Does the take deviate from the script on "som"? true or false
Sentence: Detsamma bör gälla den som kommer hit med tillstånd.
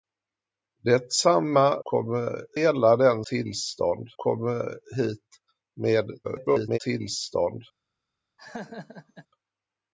true